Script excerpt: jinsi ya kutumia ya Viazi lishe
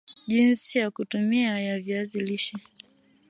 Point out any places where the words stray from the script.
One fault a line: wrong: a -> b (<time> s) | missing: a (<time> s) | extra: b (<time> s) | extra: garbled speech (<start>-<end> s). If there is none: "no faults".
no faults